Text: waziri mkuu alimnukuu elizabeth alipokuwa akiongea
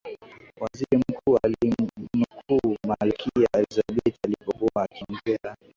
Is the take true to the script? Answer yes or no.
no